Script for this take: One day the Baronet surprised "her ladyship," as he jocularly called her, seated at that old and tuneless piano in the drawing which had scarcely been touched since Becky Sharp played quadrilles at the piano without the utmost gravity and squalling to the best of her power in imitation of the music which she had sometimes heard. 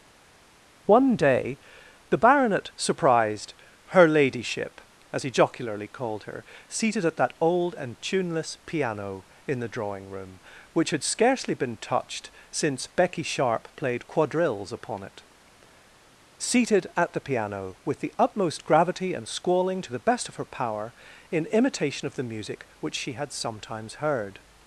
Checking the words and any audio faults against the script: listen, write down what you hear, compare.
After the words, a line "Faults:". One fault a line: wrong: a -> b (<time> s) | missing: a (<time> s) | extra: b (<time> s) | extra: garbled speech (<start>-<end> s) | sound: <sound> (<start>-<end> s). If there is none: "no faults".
One day the Baronet surprised "her ladyship," as he jocularly called her, seated at that old and tuneless piano in the drawing room, which had scarcely been touched since Becky Sharp played quadrilles upon it seated at the piano with the utmost gravity and squalling to the best of her power in imitation of the music which she had sometimes heard.
Faults:
extra: room (10.1 s)
extra: upon it seated (14.7 s)
wrong: without -> with (17.8 s)